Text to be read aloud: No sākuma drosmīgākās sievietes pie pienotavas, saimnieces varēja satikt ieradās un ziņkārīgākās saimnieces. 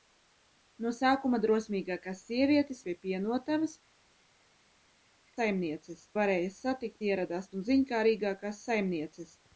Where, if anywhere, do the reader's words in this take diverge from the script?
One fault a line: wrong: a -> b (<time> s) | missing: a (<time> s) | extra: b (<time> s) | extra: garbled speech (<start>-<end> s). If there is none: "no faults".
no faults